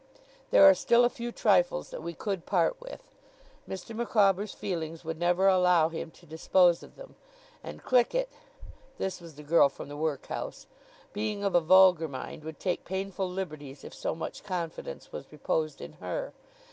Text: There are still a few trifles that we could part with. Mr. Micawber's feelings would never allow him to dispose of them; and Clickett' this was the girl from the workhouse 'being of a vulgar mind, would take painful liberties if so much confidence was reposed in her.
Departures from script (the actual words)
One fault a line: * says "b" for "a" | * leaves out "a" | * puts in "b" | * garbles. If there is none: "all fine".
all fine